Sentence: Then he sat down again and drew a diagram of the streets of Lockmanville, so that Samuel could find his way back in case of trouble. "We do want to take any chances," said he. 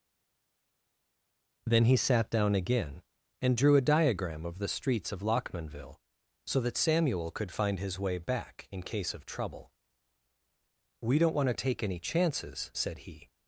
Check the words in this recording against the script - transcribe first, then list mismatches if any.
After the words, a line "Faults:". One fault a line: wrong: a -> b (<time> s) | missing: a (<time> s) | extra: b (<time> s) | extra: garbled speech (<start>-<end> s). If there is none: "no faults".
Then he sat down again and drew a diagram of the streets of Lockmanville, so that Samuel could find his way back in case of trouble. "We don't want to take any chances," said he.
Faults:
wrong: do -> don't (11.2 s)